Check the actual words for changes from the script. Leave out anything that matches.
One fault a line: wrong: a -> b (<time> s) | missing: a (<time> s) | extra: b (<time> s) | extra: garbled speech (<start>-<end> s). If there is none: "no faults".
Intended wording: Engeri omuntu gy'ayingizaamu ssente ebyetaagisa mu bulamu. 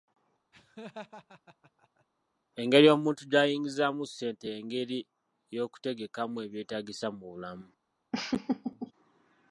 extra: y'engeri y'okutegekamu (4.5 s)